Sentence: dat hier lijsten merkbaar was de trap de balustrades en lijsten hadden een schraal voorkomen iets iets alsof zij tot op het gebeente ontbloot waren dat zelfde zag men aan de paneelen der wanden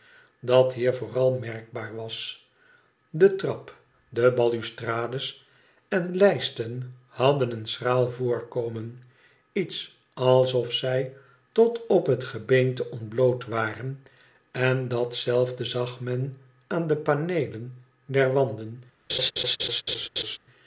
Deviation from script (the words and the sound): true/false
true